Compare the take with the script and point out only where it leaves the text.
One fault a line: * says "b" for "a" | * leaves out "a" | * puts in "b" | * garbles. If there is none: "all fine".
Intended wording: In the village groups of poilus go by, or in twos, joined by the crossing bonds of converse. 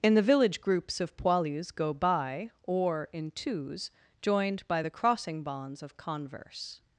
all fine